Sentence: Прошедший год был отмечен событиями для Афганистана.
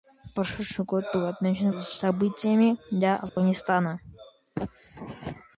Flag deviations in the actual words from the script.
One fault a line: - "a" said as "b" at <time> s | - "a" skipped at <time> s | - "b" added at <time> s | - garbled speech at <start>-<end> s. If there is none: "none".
none